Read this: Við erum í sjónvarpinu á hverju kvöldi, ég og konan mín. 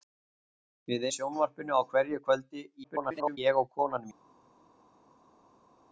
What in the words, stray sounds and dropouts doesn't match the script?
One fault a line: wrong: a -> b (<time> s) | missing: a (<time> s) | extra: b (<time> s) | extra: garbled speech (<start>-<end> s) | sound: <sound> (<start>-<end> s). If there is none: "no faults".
missing: erum (1.1 s)
extra: garbled speech (2.8-3.4 s)